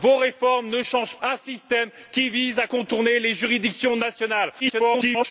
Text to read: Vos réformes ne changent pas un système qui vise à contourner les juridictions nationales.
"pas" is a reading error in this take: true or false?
true